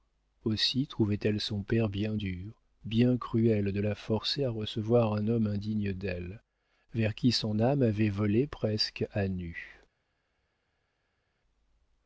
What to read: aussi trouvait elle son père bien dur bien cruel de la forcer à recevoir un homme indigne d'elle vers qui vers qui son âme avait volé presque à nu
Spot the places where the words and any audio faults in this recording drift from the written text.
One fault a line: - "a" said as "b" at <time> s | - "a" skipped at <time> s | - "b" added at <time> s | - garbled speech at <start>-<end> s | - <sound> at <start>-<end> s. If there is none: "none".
- "vers qui" skipped at 7.3 s